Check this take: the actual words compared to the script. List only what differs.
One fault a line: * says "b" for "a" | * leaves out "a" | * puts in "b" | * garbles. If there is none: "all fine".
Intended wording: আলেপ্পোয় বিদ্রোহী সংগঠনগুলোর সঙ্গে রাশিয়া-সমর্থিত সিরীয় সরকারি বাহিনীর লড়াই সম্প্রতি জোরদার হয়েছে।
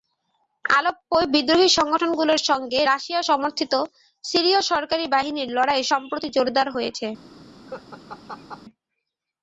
all fine